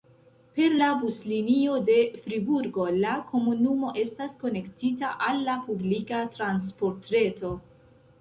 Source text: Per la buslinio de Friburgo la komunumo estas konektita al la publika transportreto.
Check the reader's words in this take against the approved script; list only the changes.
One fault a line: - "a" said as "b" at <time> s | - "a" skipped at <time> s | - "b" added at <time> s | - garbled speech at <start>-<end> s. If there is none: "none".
none